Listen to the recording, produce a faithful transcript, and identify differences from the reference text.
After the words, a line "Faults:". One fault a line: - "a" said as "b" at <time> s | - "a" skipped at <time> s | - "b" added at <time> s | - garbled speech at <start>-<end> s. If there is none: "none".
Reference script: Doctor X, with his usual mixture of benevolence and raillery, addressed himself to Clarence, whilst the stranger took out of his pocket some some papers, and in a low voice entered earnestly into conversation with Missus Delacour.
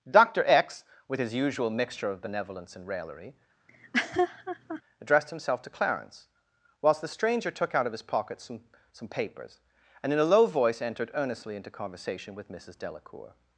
Doctor X, with his usual mixture of benevolence and raillery, addressed himself to Clarence, whilst the stranger took out of his pocket some some papers, and in a low voice entered earnestly into conversation with Missus Delacour.
Faults:
none